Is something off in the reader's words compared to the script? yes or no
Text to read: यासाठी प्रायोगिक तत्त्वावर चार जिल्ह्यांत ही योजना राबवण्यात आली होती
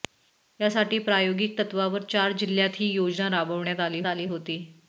yes